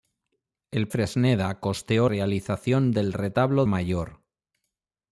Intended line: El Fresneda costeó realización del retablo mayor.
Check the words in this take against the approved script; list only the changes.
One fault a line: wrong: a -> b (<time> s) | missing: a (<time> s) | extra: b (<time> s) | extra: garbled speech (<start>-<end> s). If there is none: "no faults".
no faults